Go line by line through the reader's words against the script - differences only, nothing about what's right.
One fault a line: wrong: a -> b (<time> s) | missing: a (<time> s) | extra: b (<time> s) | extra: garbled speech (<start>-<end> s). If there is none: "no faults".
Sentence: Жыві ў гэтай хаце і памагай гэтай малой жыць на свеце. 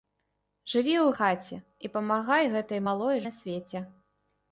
missing: гэтай (1.1 s)
missing: жыць (3.3 s)